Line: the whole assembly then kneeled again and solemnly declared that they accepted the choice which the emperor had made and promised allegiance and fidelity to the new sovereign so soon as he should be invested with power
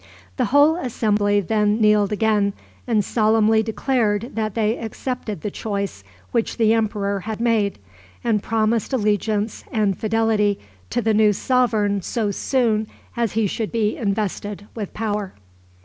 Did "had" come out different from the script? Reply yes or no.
no